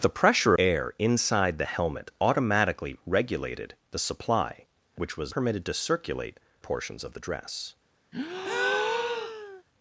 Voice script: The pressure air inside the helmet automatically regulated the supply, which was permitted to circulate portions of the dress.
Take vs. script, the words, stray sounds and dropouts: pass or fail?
fail